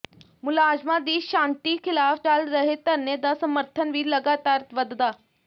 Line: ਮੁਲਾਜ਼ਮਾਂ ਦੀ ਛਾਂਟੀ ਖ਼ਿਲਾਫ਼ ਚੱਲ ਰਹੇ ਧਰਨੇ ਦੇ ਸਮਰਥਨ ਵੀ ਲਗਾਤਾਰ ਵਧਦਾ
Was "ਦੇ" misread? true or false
true